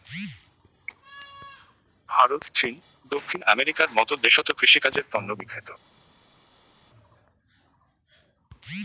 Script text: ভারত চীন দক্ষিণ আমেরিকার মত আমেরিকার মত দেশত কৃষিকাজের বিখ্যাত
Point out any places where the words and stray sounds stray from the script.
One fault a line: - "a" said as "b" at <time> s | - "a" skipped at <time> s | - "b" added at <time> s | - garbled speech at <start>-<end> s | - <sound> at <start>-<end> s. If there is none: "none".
- "আমেরিকার মত" skipped at 4.1 s
- "তন্ন" added at 5.1 s